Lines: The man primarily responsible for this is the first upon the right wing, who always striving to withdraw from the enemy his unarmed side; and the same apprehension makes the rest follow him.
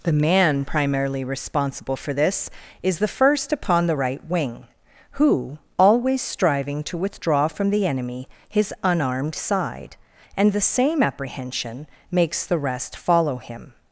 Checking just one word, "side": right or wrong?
right